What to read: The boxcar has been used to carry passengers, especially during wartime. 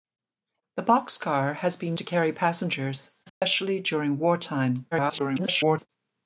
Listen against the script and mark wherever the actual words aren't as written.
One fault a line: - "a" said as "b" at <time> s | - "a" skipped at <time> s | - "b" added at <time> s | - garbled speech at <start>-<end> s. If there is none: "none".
- "used" skipped at 2.0 s
- garbled speech at 4.9-5.9 s